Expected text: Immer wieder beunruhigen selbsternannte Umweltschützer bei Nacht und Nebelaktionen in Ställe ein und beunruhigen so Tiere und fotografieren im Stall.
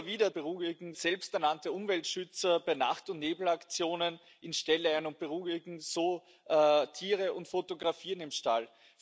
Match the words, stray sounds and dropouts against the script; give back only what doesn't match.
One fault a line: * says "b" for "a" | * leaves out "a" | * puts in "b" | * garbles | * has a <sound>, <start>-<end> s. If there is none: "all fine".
all fine